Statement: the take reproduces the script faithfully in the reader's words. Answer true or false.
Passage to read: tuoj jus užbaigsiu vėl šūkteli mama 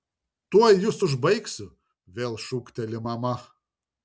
true